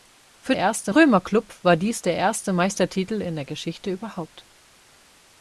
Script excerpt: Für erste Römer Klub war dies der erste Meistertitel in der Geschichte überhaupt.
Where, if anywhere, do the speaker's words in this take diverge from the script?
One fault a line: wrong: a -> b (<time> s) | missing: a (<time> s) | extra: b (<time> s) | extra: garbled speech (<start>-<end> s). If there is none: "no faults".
no faults